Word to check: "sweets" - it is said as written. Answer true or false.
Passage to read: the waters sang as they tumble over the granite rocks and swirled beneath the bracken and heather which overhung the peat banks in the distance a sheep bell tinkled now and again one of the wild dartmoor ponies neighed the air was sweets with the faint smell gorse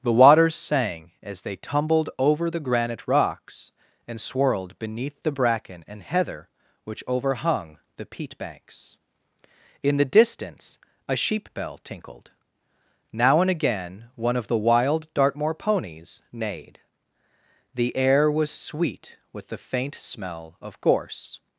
false